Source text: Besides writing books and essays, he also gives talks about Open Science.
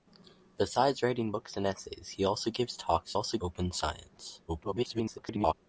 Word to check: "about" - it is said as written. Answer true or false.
false